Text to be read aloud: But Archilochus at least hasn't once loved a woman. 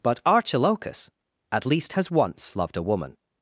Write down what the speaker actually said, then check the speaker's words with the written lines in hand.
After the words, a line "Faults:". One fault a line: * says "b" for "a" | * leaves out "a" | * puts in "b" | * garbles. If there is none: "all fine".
But Archilochus at least has once loved a woman.
Faults:
* says "has" for "hasn't"